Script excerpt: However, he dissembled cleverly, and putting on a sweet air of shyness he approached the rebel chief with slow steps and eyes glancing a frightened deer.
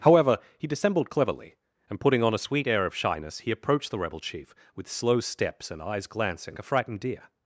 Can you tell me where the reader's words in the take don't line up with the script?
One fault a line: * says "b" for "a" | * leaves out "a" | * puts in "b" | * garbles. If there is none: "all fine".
all fine